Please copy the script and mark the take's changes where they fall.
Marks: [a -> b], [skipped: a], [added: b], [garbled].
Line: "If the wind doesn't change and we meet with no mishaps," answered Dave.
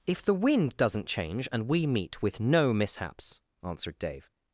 "If the wind doesn't change and we meet with no mishaps," answered Dave.